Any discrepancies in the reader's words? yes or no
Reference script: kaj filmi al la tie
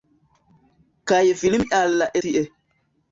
no